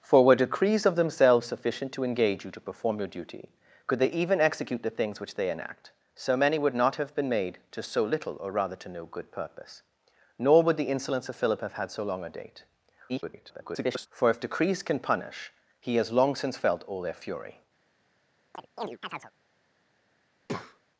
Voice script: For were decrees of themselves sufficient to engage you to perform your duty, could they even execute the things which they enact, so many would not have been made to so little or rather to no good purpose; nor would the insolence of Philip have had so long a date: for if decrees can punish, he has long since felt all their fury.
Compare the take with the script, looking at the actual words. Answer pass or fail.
fail